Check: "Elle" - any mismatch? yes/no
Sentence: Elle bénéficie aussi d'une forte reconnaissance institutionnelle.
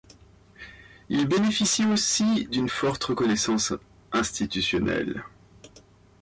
yes